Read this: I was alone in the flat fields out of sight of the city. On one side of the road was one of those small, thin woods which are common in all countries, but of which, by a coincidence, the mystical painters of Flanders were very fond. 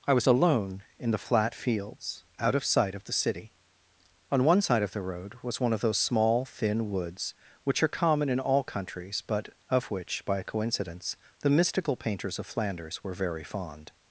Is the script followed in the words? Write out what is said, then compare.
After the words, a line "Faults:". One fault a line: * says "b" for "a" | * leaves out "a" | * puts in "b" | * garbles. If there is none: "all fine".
I was alone in the flat fields out of sight of the city. On one side of the road was one of those small, thin woods which are common in all countries, but of which, by coincidence, the mystical painters of Flanders were very fond.
Faults:
* leaves out "a"